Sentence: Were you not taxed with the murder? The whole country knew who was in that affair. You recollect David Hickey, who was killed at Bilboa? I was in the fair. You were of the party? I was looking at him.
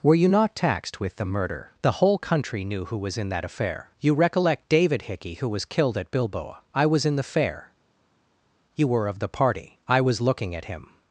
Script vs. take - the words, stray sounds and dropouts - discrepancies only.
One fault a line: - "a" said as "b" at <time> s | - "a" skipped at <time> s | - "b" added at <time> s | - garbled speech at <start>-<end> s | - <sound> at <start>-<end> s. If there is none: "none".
none